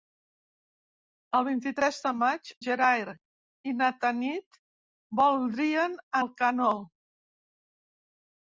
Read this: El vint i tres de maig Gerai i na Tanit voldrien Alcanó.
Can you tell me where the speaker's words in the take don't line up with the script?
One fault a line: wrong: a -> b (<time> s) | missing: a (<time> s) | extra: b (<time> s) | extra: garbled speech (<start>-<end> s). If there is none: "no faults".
no faults